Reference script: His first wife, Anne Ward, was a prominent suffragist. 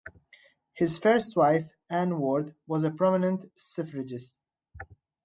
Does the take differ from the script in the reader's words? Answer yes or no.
no